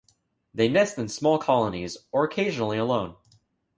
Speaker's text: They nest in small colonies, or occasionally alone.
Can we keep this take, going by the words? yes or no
yes